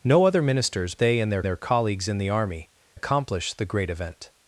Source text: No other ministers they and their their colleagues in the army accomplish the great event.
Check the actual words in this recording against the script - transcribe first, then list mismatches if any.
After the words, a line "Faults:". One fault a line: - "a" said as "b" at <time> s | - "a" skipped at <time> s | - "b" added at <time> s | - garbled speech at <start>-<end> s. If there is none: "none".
No other ministers they and their their colleagues in the army accomplish the great event.
Faults:
none